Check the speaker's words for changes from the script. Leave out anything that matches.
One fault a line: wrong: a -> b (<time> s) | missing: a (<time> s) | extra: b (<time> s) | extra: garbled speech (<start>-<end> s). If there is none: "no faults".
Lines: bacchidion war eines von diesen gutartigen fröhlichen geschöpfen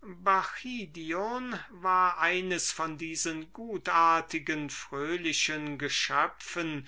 no faults